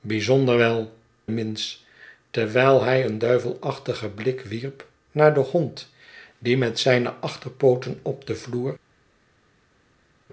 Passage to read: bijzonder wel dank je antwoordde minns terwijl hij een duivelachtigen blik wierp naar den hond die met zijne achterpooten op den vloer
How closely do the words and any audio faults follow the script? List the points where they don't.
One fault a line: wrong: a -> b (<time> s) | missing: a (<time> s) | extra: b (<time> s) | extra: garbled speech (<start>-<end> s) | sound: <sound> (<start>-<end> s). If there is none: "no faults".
missing: dank je antwoordde (1.0 s)